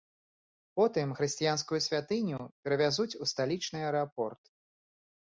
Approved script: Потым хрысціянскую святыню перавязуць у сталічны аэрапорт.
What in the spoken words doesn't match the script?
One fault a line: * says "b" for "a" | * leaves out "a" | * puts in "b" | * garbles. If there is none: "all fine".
all fine